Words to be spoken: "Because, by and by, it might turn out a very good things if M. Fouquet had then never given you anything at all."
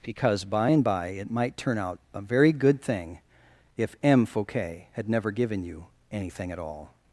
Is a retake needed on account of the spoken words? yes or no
yes